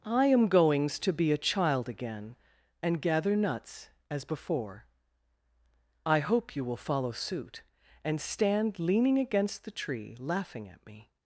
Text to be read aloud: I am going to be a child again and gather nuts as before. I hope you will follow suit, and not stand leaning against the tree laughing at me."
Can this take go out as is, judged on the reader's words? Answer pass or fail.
fail